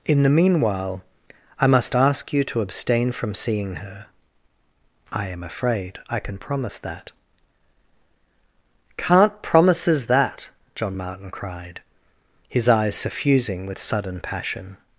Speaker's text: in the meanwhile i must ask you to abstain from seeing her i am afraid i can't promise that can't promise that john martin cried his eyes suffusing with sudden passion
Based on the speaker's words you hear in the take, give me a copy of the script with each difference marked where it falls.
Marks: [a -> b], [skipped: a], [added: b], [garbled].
in the meanwhile i must ask you to abstain from seeing her i am afraid i [can't -> can] promise that can't [promise -> promises] that john martin cried his eyes suffusing with sudden passion